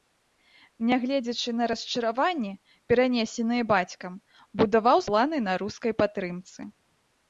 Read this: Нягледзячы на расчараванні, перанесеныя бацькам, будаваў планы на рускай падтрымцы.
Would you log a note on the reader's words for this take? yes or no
no